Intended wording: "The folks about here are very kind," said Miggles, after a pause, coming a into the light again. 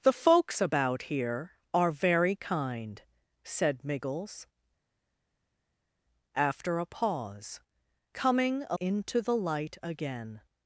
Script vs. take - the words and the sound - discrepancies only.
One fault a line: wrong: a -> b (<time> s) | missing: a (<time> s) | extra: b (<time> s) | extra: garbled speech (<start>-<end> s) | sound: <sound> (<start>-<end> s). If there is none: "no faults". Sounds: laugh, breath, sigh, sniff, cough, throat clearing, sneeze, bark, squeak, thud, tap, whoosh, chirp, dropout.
no faults